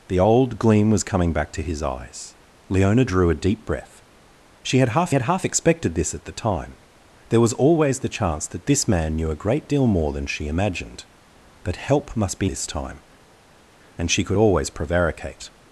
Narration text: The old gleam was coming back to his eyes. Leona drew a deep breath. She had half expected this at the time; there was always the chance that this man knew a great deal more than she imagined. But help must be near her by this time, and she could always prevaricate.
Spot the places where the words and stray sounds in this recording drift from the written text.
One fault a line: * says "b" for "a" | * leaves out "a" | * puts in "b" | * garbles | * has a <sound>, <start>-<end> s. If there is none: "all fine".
* puts in "had half"
* leaves out "near her by"